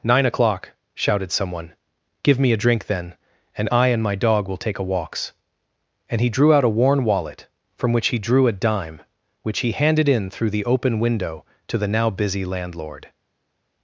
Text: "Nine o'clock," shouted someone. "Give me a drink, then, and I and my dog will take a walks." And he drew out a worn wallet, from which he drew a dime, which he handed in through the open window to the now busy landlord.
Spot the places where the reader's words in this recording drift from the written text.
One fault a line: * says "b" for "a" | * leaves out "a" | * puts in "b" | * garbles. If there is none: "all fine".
all fine